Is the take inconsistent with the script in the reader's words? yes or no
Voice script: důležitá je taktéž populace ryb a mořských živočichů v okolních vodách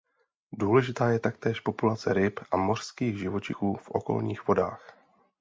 no